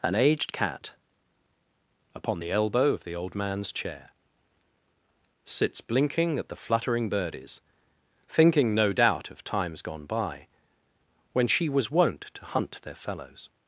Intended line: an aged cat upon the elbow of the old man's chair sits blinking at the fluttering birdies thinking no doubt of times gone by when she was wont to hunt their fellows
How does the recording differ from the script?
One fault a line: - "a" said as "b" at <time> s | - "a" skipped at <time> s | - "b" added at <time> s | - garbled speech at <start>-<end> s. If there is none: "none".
none